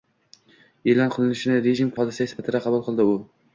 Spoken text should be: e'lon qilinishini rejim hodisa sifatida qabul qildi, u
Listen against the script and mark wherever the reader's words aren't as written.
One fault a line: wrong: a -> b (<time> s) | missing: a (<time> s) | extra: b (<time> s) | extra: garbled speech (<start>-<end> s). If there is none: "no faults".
no faults